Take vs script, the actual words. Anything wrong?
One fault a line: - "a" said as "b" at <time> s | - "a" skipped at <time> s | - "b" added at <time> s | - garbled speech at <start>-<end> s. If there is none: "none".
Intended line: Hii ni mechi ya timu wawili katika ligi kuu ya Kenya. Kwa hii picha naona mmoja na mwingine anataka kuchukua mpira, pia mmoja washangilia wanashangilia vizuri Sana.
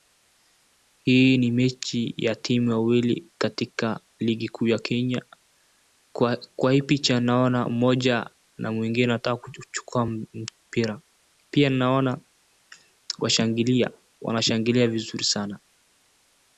- "mmoja" said as "naona" at 11.7 s